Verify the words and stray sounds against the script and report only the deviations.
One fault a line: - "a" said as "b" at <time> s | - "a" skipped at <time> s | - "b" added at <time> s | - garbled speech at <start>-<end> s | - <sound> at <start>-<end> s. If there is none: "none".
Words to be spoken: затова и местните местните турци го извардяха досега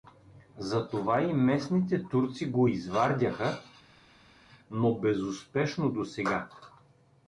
- "местните" skipped at 2.0 s
- "но безуспешно" added at 4.7 s